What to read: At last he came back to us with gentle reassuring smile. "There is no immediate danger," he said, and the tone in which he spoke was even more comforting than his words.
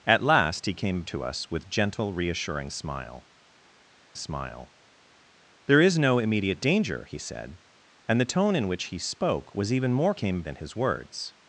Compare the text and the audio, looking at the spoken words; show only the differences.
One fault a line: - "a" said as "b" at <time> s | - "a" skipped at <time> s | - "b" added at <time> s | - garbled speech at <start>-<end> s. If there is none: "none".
- "back" skipped at 1.0 s
- "smile" added at 4.1 s
- "comforting" said as "came" at 10.1 s